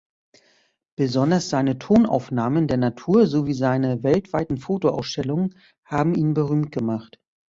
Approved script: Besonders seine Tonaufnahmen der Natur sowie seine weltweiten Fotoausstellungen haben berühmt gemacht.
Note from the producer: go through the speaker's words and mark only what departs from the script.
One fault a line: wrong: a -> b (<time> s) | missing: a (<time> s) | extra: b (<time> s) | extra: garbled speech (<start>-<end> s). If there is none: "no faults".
extra: ihn (6.2 s)